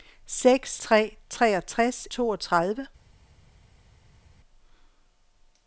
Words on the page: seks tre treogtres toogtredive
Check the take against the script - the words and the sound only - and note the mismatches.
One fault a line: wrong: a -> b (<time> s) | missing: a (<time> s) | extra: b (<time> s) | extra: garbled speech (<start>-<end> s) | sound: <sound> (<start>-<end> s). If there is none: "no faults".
no faults